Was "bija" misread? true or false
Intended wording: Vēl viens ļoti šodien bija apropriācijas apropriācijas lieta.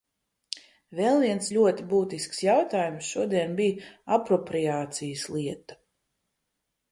false